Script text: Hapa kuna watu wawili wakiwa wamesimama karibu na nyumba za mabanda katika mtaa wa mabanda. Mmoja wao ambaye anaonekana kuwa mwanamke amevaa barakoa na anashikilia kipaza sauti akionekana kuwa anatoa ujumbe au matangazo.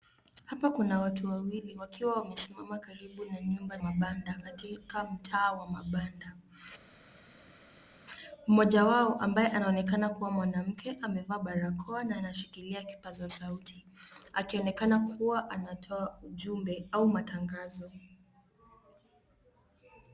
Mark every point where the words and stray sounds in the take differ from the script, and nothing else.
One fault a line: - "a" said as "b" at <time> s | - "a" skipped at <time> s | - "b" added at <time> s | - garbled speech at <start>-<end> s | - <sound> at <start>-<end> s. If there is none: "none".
- "za" skipped at 3.8 s